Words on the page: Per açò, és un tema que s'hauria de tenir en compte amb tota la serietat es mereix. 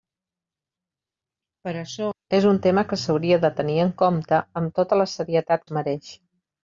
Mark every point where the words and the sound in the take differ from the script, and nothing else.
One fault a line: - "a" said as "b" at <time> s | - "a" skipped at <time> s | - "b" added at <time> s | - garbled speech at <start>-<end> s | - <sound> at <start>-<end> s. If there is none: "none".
none